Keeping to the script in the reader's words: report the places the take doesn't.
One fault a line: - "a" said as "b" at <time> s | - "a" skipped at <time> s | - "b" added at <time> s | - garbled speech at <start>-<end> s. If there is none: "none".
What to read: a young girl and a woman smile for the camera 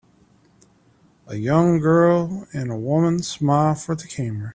none